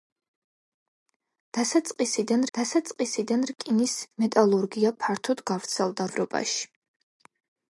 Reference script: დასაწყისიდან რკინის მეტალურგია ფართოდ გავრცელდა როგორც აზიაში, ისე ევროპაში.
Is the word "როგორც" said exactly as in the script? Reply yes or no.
no